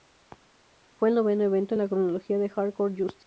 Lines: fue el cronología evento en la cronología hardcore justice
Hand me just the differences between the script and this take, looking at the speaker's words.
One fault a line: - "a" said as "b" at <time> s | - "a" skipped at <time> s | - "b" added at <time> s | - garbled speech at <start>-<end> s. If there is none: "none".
- "cronología" said as "noveno" at 1.1 s
- "de" added at 2.4 s